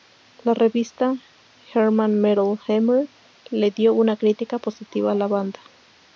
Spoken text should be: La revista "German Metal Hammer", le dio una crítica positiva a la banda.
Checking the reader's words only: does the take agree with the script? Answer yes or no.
yes